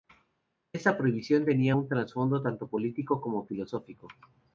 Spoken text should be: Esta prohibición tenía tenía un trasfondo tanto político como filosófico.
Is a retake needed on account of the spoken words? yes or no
yes